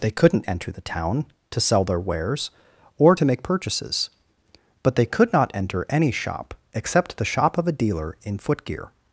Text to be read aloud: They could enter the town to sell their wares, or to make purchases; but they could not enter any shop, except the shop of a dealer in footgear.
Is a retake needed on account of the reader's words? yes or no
yes